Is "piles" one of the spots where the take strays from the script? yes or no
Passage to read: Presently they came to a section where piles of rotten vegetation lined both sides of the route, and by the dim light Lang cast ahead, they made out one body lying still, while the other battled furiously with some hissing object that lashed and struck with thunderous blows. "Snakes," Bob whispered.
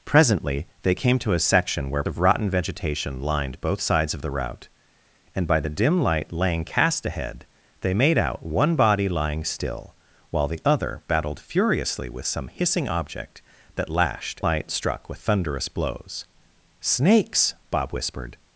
yes